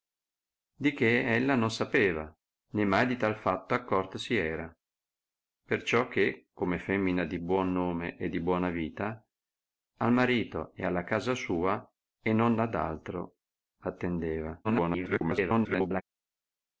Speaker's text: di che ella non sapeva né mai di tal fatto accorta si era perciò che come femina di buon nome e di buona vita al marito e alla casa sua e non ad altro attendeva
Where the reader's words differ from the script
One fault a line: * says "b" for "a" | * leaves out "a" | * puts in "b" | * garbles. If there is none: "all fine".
* garbles